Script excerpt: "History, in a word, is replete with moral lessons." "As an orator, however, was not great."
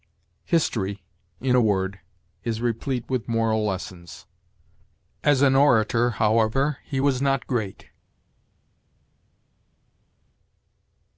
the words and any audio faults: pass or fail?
fail